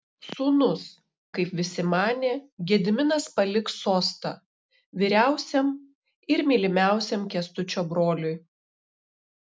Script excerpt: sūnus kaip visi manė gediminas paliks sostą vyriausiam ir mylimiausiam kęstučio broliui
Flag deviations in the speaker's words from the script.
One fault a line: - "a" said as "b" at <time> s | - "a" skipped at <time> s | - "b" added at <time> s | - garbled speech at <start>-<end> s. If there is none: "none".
none